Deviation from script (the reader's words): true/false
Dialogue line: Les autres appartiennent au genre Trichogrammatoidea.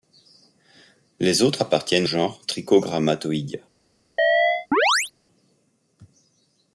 true